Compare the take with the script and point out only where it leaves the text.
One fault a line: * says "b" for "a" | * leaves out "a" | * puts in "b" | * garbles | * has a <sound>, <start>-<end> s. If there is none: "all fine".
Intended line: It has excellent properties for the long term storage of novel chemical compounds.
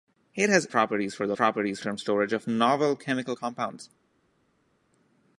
* leaves out "excellent"
* says "properties" for "long"